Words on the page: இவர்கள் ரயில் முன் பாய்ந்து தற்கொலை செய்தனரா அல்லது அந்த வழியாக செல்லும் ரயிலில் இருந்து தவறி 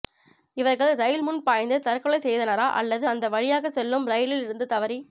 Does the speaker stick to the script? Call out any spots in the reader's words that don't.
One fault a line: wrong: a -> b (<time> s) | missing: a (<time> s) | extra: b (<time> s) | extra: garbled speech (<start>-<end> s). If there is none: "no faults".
no faults